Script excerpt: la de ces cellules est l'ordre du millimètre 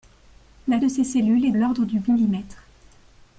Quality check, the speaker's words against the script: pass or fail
pass